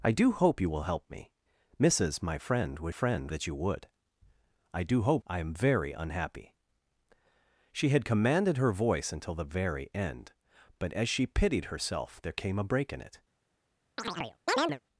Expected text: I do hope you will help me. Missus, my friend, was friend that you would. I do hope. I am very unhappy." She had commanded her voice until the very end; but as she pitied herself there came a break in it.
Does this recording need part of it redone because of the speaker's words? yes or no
no